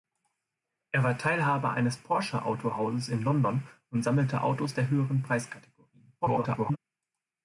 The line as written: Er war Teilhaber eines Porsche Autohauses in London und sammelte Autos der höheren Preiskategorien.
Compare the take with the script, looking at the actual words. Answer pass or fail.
fail